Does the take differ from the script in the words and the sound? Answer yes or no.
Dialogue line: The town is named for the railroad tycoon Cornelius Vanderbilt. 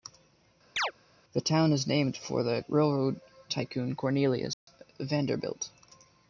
yes